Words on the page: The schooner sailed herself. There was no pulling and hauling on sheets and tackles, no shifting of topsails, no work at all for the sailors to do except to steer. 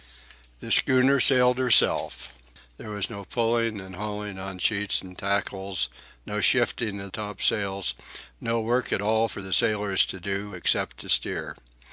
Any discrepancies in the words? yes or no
no